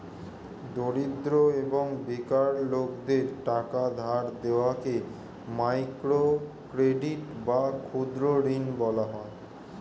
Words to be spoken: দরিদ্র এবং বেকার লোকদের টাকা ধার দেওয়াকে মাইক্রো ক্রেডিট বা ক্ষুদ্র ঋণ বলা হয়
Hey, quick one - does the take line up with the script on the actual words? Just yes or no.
yes